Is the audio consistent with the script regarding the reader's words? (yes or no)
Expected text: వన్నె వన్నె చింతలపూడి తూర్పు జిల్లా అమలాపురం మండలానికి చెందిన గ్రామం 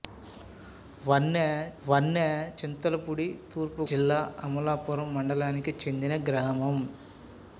yes